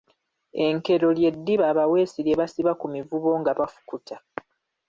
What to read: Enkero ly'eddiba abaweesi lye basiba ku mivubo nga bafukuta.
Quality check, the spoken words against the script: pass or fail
pass